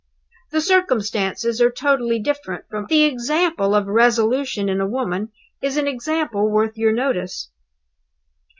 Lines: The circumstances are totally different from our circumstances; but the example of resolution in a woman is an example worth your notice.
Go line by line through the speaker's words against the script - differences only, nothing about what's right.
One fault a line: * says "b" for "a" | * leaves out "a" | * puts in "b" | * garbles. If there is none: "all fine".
* leaves out "our circumstances but"